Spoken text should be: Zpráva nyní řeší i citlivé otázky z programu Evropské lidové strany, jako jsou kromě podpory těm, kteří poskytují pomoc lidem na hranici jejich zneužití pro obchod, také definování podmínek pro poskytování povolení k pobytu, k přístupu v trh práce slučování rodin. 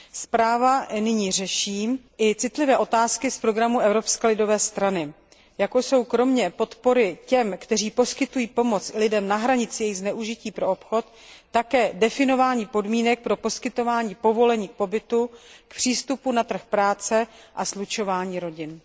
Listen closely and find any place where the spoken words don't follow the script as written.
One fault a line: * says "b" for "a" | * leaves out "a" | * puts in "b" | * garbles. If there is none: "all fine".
* says "na" for "v"
* puts in "a"